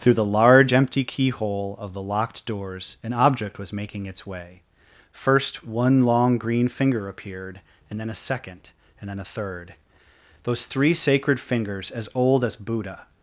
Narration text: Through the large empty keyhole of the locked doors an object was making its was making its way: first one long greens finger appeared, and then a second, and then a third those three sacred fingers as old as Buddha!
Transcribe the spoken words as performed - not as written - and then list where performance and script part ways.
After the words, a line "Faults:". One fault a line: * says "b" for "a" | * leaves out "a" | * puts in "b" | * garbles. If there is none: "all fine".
Through the large empty keyhole of the locked doors an object was making its way: first one long green finger appeared, and then a second, and then a third those three sacred fingers as old as Buddha!
Faults:
* leaves out "was making its"
* says "green" for "greens"